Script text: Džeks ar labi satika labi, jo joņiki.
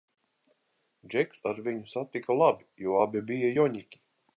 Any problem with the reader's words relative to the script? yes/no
yes